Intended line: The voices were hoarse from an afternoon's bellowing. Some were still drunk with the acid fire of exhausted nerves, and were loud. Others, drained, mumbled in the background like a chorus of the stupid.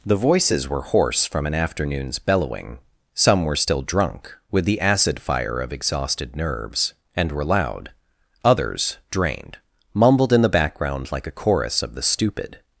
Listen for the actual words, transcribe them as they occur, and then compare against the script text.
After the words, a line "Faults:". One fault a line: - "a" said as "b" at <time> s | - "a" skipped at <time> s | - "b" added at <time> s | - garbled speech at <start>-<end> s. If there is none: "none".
The voices were hoarse from an afternoon's bellowing. Some were still drunk with the acid fire of exhausted nerves, and were loud. Others, drained, mumbled in the background like a chorus of the stupid.
Faults:
none